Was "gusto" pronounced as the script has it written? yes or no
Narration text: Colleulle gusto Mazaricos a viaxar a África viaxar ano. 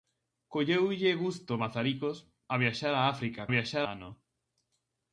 yes